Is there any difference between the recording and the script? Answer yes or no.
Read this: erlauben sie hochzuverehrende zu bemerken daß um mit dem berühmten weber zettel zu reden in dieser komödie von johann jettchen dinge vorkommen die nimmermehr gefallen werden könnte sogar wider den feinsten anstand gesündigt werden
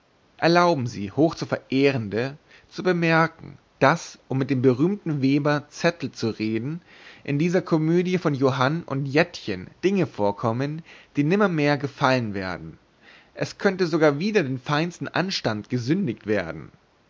yes